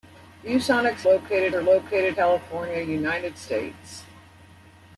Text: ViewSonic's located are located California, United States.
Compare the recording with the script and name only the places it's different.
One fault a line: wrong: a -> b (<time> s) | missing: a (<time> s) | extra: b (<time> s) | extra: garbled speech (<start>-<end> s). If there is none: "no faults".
no faults